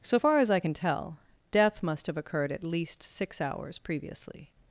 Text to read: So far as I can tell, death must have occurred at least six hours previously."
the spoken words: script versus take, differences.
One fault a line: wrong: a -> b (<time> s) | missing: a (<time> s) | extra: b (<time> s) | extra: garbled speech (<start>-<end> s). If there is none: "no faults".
no faults